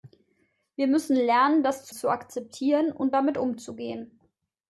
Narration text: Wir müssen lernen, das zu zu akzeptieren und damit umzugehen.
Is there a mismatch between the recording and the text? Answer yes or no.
no